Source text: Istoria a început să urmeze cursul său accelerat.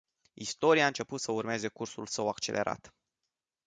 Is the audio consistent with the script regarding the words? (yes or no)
yes